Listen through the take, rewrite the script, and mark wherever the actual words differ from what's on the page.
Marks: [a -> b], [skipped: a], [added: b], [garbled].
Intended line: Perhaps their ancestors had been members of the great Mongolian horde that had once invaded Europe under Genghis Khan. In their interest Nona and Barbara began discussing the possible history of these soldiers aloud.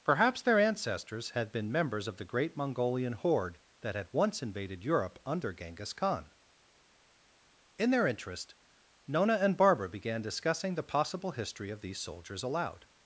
Perhaps their ancestors had been members of the great Mongolian horde that had once invaded Europe under Genghis Khan. In their interest Nona and Barbara began discussing the possible history of these soldiers aloud.